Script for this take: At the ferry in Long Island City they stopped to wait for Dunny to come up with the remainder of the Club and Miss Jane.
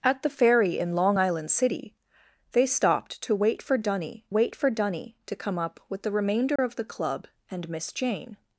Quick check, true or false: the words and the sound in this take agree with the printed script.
false